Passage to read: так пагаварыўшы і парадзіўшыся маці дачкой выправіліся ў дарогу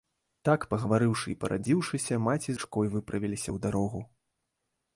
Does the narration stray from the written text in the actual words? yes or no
no